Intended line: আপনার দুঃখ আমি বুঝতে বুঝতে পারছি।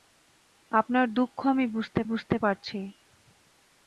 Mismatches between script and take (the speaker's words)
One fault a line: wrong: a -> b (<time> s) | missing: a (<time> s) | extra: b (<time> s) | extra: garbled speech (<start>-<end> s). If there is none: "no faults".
no faults